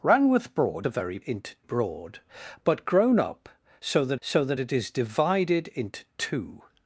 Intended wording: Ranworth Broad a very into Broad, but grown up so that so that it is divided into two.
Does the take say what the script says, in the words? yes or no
yes